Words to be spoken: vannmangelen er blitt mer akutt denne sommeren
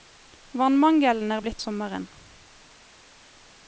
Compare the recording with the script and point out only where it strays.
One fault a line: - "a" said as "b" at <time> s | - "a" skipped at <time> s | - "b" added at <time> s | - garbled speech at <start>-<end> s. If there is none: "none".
- "mer akutt denne" skipped at 1.6 s